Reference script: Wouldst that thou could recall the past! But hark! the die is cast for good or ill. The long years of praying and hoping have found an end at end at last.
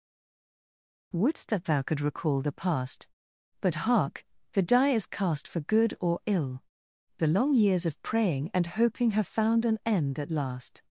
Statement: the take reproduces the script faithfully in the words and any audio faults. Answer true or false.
false